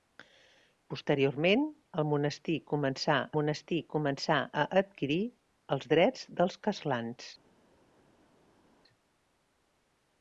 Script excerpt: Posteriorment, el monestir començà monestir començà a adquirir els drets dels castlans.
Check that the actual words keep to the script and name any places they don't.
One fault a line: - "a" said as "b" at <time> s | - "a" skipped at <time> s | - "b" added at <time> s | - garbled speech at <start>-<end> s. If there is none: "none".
none